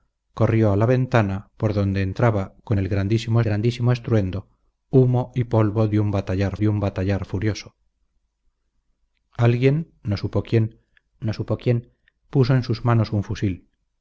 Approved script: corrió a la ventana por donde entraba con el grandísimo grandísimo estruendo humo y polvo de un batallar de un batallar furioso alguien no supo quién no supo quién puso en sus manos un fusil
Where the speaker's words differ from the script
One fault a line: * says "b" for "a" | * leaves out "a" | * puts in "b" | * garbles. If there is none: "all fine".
all fine